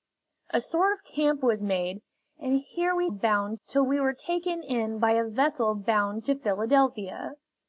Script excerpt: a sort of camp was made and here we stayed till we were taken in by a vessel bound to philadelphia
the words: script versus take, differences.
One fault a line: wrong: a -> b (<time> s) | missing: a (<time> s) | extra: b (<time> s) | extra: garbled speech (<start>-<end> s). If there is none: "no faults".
wrong: stayed -> bound (3.1 s)